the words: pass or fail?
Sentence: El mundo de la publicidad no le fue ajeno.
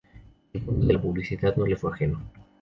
pass